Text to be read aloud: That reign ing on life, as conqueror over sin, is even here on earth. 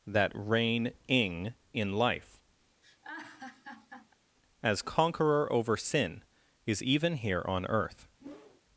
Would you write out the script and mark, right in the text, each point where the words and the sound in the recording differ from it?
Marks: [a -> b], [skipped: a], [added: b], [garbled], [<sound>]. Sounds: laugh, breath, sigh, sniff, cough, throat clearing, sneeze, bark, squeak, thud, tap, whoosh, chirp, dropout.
That reign ing [on -> in] life, [laugh] as conqueror over sin, is even here on earth. [whoosh]